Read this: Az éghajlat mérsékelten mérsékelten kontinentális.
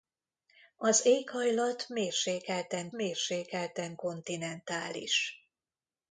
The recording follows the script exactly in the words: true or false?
true